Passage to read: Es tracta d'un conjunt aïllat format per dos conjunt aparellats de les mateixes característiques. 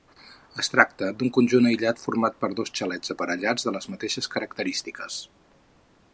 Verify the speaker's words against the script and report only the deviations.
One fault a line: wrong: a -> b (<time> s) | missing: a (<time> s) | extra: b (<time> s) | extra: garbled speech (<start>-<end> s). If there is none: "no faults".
wrong: conjunt -> xalets (2.8 s)